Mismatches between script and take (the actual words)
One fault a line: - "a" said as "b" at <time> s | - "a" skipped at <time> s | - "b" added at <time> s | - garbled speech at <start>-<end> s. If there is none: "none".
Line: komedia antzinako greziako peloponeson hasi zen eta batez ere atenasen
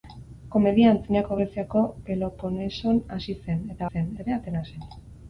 - "batez" said as "zen" at 3.9 s